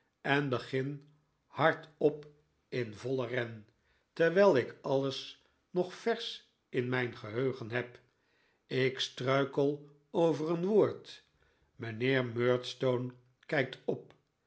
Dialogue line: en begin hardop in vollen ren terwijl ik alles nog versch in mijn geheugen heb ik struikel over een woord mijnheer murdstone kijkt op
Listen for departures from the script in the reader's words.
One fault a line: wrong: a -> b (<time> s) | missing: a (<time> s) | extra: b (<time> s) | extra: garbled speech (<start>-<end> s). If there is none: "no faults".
no faults